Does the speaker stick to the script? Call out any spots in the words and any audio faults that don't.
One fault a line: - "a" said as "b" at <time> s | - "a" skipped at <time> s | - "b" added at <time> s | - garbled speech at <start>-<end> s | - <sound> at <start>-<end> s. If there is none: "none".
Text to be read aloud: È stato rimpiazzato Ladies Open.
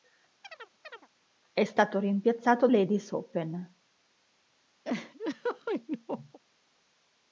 - chirp at 0.4-1.1 s
- laugh at 4.8-6.4 s